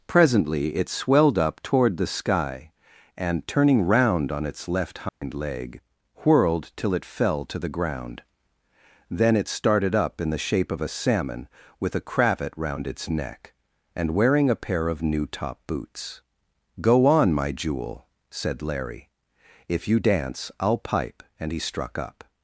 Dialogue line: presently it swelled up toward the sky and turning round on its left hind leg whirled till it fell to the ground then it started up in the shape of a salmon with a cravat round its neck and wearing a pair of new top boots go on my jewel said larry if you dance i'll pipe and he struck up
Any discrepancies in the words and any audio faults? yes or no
yes